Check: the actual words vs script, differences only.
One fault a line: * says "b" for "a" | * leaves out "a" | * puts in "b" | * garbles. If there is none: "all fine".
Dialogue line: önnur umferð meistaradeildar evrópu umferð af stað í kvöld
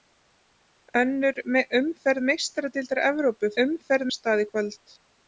all fine